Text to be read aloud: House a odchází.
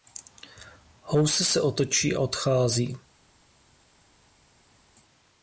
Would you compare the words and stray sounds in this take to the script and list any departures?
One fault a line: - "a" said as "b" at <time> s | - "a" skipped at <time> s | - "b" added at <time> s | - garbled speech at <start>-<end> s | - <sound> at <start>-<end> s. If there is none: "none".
- "se otočí" added at 1.4 s